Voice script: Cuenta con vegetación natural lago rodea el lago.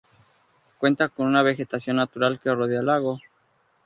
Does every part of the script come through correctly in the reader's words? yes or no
no